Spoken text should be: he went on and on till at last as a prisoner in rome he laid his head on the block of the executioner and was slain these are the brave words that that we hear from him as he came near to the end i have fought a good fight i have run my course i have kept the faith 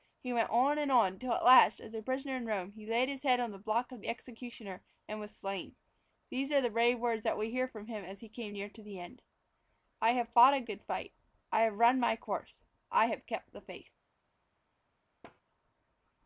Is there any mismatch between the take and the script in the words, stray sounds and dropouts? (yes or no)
yes